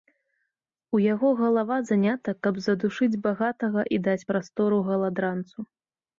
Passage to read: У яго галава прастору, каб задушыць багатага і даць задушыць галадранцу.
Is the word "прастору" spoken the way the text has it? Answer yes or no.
no